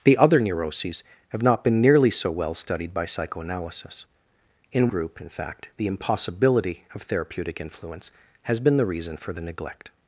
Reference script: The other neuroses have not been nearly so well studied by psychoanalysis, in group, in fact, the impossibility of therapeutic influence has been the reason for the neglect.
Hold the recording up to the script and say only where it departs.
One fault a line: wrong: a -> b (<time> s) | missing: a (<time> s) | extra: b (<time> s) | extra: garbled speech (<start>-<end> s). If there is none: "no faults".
no faults